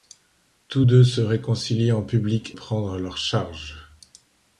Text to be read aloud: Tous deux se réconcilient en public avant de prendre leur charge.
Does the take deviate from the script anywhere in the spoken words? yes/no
yes